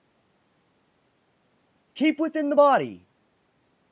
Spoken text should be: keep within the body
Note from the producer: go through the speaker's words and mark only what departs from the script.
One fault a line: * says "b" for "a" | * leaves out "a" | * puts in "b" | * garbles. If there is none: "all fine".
all fine